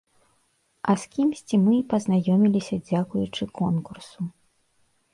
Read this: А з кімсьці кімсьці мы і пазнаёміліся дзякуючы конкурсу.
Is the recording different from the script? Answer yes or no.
yes